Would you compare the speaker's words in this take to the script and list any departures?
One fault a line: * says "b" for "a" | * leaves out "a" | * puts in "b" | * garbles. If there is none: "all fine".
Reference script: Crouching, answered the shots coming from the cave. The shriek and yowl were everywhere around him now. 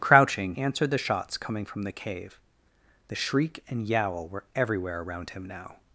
all fine